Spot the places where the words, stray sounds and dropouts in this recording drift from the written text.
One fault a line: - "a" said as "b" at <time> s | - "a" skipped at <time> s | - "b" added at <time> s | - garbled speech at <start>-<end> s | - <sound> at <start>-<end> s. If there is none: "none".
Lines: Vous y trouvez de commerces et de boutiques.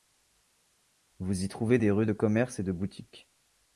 - "des rues" added at 1.8 s